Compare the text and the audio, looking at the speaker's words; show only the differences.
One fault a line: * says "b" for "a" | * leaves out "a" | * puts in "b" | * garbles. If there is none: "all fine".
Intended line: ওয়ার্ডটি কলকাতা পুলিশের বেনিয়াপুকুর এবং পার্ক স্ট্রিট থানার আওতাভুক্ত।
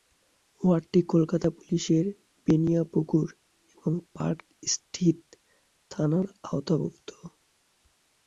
all fine